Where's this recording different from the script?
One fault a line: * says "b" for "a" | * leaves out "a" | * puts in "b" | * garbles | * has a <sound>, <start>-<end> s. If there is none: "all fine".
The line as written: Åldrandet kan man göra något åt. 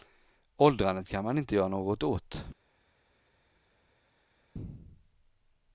* puts in "inte"